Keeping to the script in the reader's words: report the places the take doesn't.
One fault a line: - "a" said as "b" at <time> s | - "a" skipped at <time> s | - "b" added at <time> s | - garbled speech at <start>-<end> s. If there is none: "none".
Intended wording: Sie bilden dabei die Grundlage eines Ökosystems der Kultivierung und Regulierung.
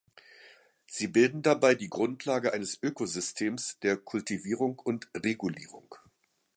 none